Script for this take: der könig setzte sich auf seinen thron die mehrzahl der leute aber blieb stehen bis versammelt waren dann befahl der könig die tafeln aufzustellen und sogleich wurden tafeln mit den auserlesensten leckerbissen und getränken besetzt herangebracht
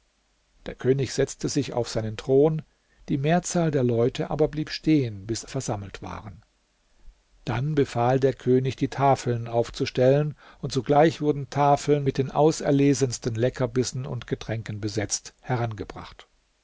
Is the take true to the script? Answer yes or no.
yes